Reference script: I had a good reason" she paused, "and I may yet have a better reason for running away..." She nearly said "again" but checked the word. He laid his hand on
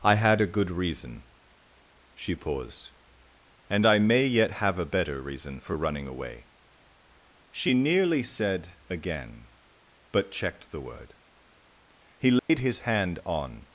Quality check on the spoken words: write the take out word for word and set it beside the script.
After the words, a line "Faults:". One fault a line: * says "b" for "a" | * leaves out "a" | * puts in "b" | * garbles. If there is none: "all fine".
I had a good reason" she paused, "and I may yet have a better reason for running away..." She nearly said "again" but checked the word. He laid his hand on
Faults:
all fine